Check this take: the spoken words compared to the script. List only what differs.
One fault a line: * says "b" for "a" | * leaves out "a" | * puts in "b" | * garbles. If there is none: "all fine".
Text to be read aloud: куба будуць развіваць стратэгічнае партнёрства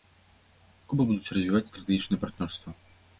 all fine